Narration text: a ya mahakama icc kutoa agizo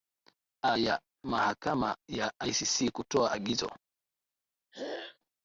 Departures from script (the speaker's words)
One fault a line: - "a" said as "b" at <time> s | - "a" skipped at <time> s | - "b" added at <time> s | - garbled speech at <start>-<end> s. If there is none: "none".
- "ya" added at 2.1 s